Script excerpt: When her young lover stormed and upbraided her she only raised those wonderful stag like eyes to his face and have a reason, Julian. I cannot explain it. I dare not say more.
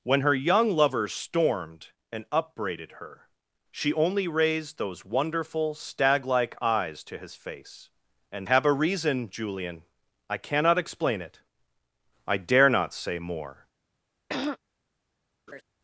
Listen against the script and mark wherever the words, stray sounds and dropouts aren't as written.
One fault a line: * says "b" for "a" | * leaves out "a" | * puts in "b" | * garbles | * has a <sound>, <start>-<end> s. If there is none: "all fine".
* has a throat clearing, 14.3-14.6 s
* has a laugh, 15.5-15.6 s